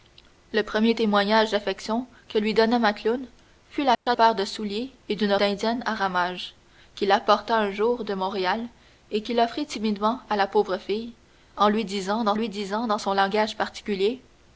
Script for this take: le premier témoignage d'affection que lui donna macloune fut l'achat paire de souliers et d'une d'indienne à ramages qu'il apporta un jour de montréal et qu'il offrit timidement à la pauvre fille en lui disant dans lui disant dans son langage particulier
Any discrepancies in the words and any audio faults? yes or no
yes